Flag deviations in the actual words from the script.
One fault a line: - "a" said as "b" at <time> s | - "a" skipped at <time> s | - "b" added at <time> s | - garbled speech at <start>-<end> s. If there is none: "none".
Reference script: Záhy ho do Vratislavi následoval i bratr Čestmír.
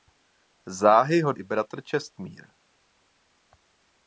- "do Vratislavi následoval" skipped at 1.3 s